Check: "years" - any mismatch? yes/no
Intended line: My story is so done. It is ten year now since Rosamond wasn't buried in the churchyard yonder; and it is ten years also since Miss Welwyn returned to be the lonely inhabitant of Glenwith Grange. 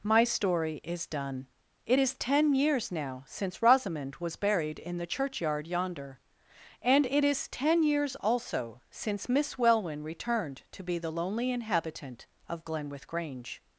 no